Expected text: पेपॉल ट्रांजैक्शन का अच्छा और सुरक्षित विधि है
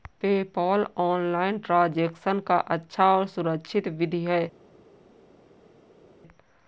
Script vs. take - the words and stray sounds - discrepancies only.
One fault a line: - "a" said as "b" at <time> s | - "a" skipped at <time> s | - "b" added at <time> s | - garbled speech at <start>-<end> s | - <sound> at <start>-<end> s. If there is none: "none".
- "ऑनलाइन" added at 1.0 s